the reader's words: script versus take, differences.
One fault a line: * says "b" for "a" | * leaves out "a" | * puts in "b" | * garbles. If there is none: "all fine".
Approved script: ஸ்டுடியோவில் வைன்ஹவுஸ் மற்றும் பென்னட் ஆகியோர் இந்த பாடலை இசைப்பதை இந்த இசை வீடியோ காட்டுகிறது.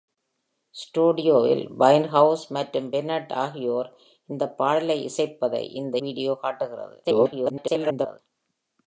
* leaves out "இசை"
* garbles